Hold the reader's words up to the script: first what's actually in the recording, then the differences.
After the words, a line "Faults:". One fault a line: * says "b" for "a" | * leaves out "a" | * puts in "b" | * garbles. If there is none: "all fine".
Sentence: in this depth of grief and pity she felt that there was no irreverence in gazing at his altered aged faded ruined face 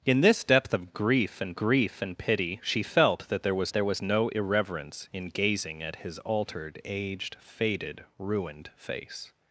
in this depth of grief and grief and pity she felt that there was there was no irreverence in gazing at his altered aged faded ruined face
Faults:
* puts in "grief and"
* puts in "there was"